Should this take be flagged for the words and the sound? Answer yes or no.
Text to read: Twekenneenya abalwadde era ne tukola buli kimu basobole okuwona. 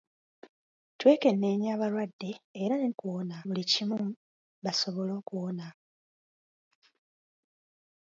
yes